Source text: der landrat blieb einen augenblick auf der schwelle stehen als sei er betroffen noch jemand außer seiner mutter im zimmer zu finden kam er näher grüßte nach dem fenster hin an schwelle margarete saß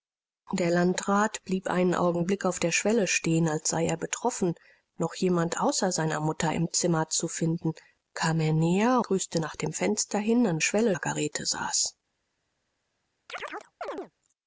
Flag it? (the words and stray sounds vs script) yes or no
yes